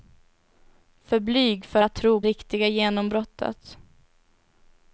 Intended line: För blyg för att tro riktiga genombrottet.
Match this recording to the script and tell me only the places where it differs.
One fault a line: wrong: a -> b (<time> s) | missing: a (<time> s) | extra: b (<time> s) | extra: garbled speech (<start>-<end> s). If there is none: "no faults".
no faults